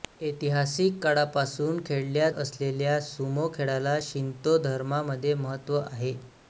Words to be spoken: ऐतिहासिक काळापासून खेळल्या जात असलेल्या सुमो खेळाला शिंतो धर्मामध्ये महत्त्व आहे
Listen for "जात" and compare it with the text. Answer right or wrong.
wrong